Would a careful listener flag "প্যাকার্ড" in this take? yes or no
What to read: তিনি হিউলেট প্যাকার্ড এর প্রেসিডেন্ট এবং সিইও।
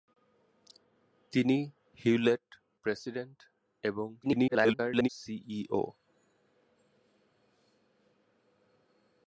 yes